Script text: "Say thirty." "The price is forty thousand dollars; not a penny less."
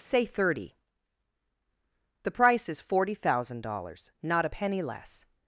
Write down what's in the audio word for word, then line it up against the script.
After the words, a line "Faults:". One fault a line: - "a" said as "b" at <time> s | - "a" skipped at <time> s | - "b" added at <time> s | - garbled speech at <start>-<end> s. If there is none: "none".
"Say thirty." "The price is forty thousand dollars; not a penny less."
Faults:
none